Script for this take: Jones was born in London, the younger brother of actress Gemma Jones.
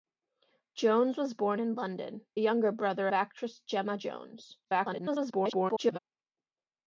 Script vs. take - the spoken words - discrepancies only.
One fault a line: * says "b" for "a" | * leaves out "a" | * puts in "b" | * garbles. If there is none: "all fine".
* leaves out "the"
* leaves out "of"
* garbles